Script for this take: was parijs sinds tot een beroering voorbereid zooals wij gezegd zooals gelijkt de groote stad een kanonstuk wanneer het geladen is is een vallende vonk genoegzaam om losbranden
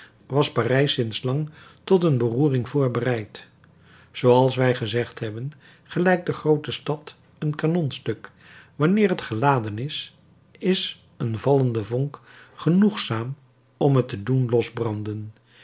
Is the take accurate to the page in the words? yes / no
no